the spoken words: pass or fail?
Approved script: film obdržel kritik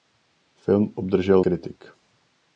pass